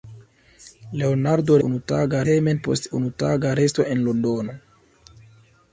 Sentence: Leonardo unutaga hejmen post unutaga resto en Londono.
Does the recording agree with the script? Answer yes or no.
yes